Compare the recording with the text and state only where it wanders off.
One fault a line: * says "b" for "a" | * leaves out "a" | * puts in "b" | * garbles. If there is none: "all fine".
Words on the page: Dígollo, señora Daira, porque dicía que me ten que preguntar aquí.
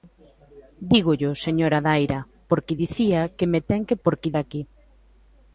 * says "porque" for "preguntar"